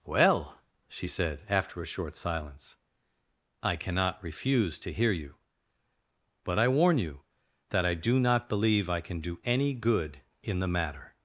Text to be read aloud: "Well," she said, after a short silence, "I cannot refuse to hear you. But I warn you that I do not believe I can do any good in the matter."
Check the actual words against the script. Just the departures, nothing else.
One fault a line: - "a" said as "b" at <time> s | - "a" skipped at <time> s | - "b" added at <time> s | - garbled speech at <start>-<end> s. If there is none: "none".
none